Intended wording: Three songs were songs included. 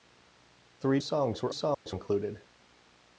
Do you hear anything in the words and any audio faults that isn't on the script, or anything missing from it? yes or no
yes